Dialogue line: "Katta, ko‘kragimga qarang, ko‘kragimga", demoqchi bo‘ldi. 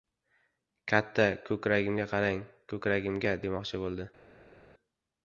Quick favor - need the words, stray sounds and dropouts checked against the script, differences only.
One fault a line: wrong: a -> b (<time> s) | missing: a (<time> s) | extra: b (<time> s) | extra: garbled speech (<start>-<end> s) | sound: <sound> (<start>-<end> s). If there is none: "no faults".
no faults